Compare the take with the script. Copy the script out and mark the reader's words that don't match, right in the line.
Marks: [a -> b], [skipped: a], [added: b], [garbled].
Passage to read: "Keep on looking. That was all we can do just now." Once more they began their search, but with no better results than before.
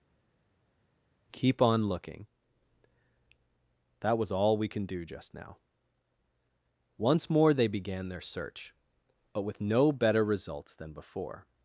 "Keep on looking. That was all we can do just now." Once more they began their search, but with no better results than before.